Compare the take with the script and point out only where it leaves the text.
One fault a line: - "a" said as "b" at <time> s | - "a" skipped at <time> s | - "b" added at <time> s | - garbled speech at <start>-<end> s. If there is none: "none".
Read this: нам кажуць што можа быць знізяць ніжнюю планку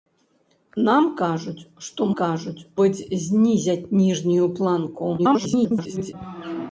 - "можа" said as "кажуць" at 2.2 s
- garbled speech at 5.2-6.1 s